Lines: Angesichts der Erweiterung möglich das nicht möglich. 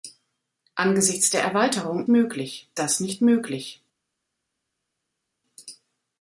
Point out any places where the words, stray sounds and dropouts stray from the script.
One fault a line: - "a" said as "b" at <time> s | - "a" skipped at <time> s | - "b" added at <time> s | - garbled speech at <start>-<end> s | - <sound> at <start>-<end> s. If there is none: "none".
none